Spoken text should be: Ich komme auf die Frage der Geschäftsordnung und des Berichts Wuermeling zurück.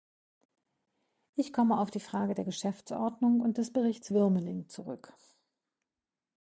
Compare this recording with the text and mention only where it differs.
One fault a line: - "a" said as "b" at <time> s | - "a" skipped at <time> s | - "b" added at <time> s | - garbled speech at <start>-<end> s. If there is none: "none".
none